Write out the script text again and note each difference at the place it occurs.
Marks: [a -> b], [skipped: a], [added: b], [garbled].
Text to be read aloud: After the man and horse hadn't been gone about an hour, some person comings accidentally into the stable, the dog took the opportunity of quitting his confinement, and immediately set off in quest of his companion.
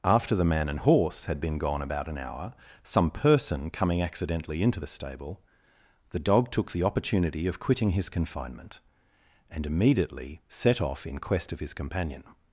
After the man and horse [hadn't -> had] been gone about an hour, some person [comings -> coming] accidentally into the stable, the dog took the opportunity of quitting his confinement, and immediately set off in quest of his companion.